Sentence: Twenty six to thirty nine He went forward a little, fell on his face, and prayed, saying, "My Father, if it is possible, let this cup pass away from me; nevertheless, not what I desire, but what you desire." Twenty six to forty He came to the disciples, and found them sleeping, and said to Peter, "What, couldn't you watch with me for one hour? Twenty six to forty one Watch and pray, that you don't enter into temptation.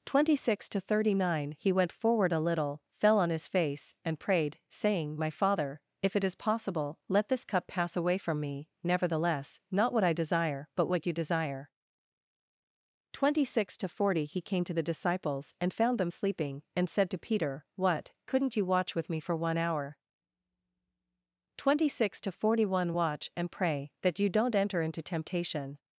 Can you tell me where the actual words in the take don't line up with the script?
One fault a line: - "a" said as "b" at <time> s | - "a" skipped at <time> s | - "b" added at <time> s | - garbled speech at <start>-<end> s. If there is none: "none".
none